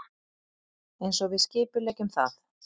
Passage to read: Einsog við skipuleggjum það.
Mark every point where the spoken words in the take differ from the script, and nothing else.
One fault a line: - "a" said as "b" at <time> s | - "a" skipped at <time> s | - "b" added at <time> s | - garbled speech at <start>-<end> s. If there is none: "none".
none